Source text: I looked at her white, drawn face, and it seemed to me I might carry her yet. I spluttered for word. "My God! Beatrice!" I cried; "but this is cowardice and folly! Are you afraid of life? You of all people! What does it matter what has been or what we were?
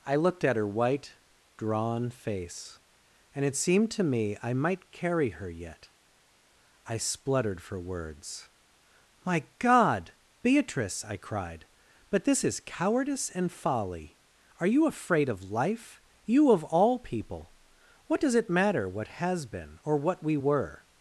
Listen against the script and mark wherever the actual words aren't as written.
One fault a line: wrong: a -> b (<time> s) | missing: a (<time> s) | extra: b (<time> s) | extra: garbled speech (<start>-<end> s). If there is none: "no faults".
wrong: word -> words (7.8 s)